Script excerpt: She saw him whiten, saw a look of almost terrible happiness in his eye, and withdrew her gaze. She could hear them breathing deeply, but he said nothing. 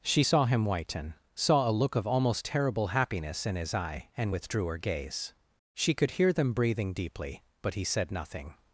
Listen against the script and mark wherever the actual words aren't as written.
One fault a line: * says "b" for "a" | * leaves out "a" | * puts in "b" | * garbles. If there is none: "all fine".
all fine